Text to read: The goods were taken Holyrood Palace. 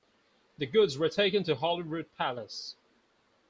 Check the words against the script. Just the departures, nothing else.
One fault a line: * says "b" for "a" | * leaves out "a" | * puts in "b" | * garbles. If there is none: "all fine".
* puts in "to"